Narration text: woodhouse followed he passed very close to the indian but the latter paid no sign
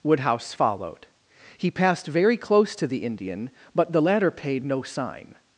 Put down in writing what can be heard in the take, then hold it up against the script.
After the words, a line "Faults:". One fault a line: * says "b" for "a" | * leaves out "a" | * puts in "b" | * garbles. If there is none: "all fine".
woodhouse followed he passed very close to the indian but the latter paid no sign
Faults:
all fine